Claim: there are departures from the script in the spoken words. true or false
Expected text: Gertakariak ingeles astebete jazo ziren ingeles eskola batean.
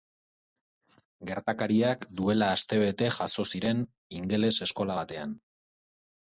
true